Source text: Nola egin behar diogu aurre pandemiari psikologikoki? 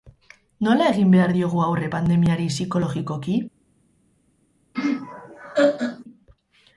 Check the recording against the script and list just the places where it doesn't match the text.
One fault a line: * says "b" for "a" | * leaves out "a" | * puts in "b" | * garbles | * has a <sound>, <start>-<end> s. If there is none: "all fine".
* has a laugh, 4.7-6.0 s